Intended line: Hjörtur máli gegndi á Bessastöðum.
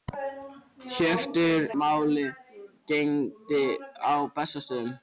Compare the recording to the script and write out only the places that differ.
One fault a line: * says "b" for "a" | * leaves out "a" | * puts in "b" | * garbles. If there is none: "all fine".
all fine